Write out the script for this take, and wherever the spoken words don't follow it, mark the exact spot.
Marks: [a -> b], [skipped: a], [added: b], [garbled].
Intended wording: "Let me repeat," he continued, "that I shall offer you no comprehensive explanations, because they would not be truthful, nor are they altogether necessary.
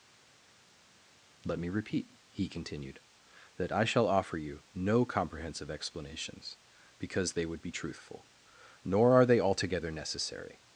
"Let me repeat," he continued, "that I shall offer you no comprehensive explanations, because they would [skipped: not] be truthful, nor are they altogether necessary.